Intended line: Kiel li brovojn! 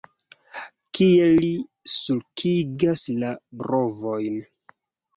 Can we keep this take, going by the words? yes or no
no